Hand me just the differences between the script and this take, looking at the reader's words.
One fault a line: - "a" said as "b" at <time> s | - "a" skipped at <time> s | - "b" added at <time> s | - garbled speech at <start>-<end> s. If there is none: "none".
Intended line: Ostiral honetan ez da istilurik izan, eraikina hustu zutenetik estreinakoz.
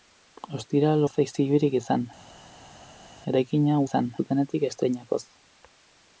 - "honetan" skipped at 1.1 s
- "hustu" said as "izan" at 3.8 s